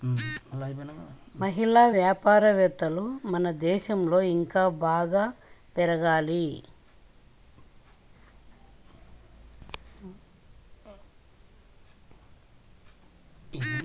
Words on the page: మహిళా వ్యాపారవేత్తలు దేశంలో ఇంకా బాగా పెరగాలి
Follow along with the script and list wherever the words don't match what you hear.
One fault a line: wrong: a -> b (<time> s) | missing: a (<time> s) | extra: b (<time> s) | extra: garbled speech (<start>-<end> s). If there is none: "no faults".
extra: మన (3.3 s)